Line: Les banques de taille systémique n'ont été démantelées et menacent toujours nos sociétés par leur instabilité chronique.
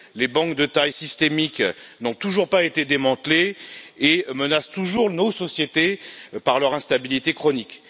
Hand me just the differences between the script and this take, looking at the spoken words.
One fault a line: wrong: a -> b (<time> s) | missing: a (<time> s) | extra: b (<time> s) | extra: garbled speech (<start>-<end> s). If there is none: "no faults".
extra: toujours pas (2.1 s)